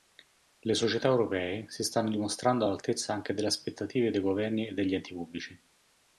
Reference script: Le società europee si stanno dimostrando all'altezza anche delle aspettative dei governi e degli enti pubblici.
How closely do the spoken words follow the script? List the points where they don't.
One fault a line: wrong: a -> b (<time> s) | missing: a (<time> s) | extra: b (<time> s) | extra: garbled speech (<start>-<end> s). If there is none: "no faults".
no faults